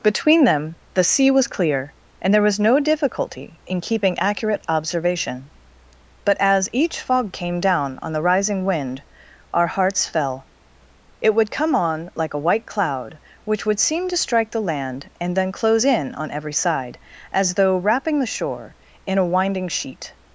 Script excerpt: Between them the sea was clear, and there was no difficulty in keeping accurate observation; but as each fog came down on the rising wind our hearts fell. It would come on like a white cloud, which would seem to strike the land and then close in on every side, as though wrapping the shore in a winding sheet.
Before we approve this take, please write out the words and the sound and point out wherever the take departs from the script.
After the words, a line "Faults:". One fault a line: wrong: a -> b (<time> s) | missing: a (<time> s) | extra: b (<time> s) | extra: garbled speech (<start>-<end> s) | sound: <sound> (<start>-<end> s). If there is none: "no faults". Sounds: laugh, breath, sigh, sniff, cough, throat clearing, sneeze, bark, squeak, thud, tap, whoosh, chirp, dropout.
Between them the sea was clear, and there was no difficulty in keeping accurate observation; but as each fog came down on the rising wind our hearts fell. It would come on like a white cloud, which would seem to strike the land and then close in on every side, as though wrapping the shore in a winding sheet.
Faults:
no faults